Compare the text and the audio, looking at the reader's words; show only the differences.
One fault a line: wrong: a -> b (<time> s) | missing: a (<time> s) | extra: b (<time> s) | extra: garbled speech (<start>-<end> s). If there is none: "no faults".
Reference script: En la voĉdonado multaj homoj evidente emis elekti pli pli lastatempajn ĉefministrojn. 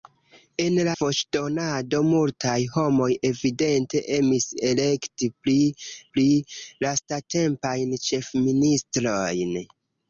no faults